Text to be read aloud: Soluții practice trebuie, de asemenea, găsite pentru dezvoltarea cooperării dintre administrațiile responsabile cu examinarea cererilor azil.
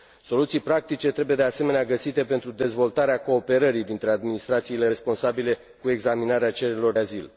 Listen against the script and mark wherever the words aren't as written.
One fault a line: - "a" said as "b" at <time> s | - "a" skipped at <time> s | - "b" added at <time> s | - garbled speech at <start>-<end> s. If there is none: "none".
none